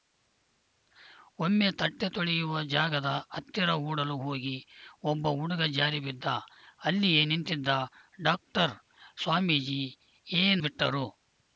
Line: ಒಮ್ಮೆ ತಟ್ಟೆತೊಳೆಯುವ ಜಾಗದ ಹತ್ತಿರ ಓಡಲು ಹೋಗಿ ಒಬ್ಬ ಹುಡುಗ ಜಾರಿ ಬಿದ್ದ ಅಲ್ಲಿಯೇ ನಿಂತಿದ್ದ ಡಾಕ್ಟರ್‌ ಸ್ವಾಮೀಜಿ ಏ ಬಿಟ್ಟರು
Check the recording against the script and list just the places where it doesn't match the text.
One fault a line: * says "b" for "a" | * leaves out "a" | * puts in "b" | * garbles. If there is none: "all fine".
all fine